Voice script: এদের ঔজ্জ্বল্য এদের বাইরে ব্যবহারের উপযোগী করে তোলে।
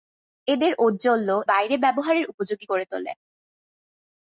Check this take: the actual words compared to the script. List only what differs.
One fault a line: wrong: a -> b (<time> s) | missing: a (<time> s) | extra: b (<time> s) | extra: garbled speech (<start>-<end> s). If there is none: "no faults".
missing: এদের (1.3 s)